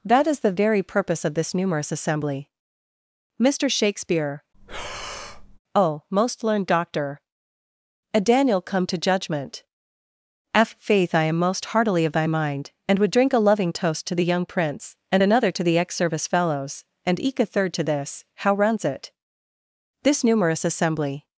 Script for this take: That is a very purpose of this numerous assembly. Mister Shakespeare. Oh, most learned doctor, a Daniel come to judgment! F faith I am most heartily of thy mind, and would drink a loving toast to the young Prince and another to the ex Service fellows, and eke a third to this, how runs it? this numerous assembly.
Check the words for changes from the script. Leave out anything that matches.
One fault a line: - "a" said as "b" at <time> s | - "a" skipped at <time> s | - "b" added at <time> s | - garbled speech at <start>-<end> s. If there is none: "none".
- "a" said as "the" at 0.4 s